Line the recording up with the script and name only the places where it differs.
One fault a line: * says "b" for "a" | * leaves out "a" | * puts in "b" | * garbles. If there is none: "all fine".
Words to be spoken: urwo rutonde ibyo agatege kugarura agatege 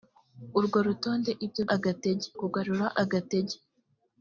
all fine